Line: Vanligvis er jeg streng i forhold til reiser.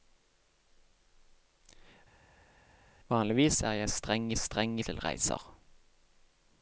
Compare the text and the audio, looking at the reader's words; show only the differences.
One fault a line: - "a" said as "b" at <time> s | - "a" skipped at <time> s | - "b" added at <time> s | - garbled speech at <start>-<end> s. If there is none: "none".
- "forhold" said as "streng" at 4.4 s